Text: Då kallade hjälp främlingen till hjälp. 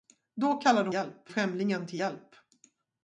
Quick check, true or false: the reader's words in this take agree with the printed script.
true